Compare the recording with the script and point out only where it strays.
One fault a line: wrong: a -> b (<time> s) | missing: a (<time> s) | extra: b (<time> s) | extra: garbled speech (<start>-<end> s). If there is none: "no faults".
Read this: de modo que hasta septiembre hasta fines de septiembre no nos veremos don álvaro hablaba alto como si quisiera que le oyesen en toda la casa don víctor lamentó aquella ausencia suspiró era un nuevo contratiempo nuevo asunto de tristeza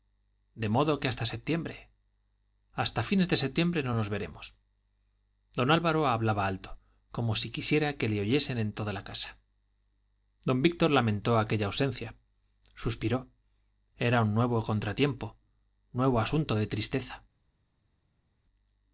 no faults